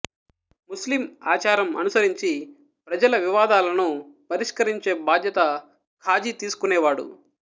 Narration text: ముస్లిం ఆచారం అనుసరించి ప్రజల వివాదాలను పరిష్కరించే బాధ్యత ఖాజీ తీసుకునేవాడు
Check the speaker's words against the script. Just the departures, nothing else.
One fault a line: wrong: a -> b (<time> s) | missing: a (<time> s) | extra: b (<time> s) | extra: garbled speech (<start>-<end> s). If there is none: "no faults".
no faults